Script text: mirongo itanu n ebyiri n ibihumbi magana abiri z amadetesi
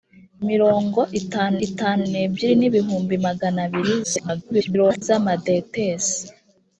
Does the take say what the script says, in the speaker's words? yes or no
no